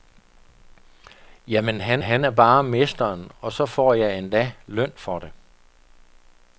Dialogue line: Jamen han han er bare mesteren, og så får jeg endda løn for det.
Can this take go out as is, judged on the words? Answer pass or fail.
pass